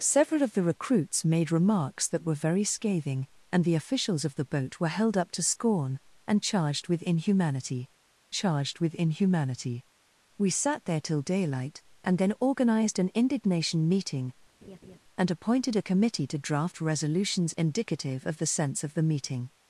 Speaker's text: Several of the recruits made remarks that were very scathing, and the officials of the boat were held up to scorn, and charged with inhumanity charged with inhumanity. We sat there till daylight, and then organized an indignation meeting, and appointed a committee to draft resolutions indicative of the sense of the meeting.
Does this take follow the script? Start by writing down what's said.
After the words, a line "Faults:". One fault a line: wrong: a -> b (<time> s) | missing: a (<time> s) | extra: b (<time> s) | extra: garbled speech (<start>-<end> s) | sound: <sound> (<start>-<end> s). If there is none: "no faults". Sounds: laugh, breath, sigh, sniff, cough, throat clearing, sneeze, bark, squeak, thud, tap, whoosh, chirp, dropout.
Several of the recruits made remarks that were very scathing, and the officials of the boat were held up to scorn, and charged with inhumanity charged with inhumanity. We sat there till daylight, and then organized an indignation meeting, and appointed a committee to draft resolutions indicative of the sense of the meeting.
Faults:
sound: laugh (14.6-15.0 s)